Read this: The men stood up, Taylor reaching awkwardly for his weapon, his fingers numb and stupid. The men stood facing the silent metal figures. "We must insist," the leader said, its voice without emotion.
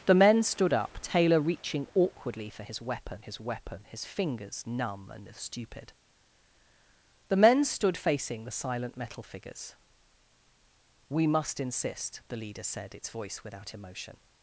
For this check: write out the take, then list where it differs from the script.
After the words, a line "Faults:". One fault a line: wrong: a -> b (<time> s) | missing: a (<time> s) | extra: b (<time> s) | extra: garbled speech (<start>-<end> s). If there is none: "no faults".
The men stood up, Taylor reaching awkwardly for his weapon his weapon, his fingers numb and stupid. The men stood facing the silent metal figures. "We must insist," the leader said, its voice without emotion.
Faults:
extra: weapon his (3.4 s)